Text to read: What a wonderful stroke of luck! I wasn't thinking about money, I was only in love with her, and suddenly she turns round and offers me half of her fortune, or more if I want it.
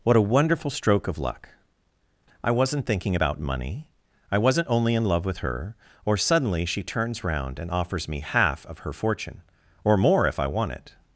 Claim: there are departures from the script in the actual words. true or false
true